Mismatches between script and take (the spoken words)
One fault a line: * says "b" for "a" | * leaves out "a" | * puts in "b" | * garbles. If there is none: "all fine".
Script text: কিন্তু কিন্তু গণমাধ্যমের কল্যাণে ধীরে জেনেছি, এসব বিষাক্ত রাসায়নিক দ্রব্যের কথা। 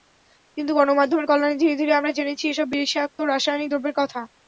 * leaves out "কিন্তু"
* puts in "ধীরে আমরা"